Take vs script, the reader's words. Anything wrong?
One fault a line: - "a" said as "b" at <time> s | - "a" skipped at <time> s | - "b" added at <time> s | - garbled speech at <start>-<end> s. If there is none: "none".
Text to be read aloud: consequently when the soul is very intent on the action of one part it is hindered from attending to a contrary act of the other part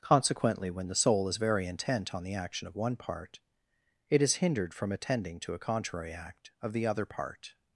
none